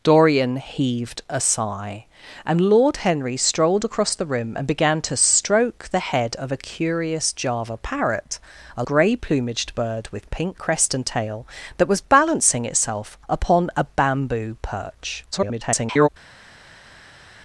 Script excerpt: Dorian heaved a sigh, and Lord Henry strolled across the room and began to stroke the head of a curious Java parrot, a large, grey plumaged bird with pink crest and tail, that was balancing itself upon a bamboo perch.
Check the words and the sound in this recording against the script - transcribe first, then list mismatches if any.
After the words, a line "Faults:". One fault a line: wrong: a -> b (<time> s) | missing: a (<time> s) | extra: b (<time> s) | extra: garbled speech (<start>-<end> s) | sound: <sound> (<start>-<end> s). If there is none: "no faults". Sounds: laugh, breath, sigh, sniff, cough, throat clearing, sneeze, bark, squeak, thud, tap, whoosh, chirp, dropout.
Dorian heaved a sigh, and Lord Henry strolled across the room and began to stroke the head of a curious Java parrot, a grey plumaged bird with pink crest and tail, that was balancing itself upon a bamboo perch. [garbled]
Faults:
missing: large (8.8 s)
extra: garbled speech (15.3-16.1 s)